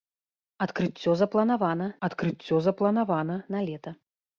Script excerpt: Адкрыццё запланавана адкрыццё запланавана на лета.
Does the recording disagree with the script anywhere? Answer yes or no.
no